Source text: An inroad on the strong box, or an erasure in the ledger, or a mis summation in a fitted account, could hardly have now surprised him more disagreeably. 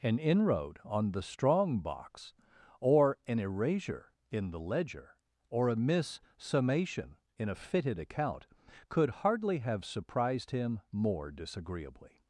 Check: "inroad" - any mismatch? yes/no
no